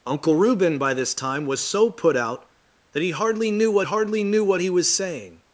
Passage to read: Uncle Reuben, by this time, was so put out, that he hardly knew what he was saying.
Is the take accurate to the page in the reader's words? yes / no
no